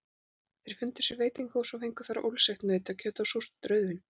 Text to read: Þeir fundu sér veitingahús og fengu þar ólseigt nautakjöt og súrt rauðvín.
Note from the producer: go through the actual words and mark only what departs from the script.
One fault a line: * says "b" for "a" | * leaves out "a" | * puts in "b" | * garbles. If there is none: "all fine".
all fine